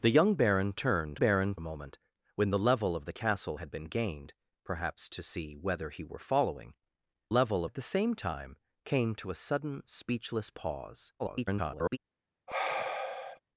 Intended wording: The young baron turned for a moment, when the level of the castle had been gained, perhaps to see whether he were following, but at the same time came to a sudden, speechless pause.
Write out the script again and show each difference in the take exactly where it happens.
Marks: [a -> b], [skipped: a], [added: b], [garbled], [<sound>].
The young baron turned [for -> baron] a moment, when the level of the castle had been gained, perhaps to see whether he were following, [but -> level] at the same time came to a sudden, speechless pause. [garbled] [sigh]